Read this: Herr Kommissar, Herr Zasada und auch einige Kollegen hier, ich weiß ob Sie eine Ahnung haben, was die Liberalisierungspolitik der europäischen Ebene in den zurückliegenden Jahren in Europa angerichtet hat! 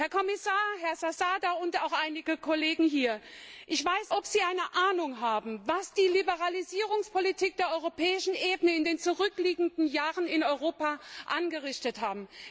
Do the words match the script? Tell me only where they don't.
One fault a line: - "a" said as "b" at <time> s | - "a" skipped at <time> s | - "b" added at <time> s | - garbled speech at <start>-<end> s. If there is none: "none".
none